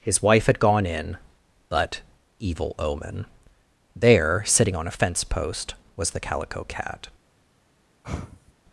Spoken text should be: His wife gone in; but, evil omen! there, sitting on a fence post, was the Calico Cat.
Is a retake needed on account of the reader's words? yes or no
yes